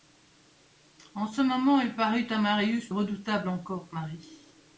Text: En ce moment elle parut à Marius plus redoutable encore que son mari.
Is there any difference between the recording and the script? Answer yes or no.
yes